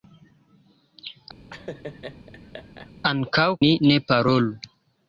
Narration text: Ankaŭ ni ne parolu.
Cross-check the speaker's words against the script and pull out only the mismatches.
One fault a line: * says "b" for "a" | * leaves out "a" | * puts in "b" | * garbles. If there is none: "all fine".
all fine